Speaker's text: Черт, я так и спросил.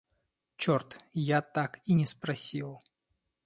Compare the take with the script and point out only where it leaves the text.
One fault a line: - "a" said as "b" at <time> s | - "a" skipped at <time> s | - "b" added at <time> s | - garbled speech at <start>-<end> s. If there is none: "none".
- "не" added at 1.9 s